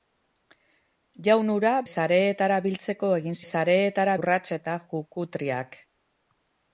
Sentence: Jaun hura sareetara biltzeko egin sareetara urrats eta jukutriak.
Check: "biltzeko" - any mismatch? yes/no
no